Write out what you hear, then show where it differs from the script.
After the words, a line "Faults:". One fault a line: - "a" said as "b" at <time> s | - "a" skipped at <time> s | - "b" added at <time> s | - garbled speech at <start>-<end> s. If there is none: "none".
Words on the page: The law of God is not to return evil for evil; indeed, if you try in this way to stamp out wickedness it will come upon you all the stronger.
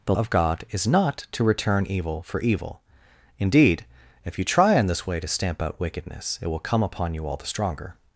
The of God is not to return evil for evil; indeed, if you try in this way to stamp out wickedness it will come upon you all the stronger.
Faults:
- "law" skipped at 0.1 s